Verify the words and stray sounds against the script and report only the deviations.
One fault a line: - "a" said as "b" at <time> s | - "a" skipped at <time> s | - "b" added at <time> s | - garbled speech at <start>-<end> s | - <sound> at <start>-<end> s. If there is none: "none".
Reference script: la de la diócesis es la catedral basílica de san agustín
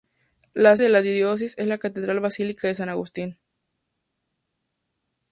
none